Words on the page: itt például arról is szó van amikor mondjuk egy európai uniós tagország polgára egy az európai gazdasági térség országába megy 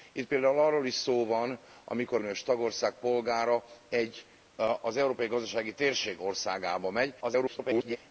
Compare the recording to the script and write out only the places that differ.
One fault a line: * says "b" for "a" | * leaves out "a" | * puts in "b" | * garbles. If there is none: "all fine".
* leaves out "mondjuk egy európai"
* garbles